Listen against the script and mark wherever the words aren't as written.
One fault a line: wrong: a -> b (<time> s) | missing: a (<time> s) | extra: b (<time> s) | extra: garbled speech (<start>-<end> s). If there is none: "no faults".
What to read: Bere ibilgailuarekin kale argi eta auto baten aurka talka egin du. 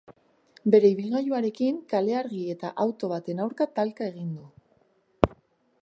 no faults